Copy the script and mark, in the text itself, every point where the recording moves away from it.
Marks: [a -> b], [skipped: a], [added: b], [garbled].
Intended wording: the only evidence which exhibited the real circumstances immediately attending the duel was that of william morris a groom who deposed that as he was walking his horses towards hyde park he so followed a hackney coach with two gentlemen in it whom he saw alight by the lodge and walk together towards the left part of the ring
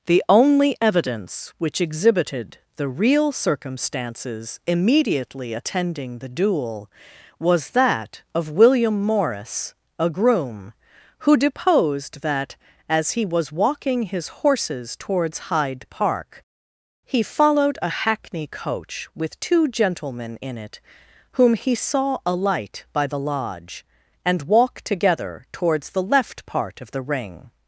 the only evidence which exhibited the real circumstances immediately attending the duel was that of william morris a groom who deposed that as he was walking his horses towards hyde park he [skipped: so] followed a hackney coach with two gentlemen in it whom he saw alight by the lodge and walk together towards the left part of the ring